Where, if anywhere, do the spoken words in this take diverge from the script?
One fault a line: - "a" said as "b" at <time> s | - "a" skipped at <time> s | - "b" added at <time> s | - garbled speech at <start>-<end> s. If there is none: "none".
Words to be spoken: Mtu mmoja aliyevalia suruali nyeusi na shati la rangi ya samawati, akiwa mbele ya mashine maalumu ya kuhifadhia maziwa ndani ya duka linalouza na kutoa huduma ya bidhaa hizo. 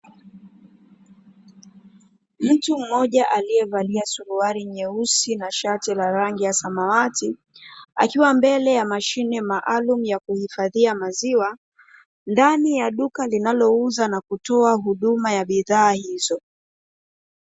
none